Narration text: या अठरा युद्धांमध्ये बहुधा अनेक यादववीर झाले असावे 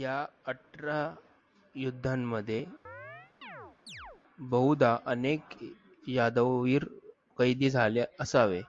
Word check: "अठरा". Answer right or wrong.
right